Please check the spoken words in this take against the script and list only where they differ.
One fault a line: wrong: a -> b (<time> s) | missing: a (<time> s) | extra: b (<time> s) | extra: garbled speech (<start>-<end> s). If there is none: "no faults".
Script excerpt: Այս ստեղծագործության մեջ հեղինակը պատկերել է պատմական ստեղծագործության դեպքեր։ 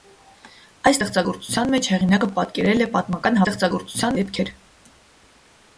no faults